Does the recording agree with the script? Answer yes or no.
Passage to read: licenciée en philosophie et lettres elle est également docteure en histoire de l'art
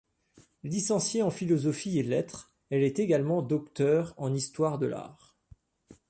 yes